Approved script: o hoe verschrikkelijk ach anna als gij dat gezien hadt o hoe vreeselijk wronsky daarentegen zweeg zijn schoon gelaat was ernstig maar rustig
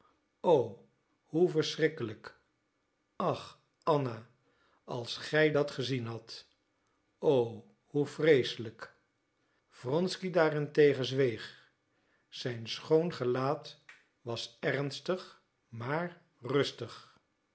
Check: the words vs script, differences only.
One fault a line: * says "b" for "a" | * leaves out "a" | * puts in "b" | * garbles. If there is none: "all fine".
all fine